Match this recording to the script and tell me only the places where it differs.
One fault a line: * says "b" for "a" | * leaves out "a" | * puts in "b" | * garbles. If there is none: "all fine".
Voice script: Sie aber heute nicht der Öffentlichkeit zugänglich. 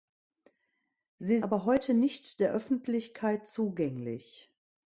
all fine